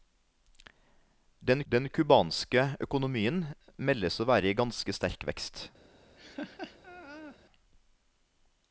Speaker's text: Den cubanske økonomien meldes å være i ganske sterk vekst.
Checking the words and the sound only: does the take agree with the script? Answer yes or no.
no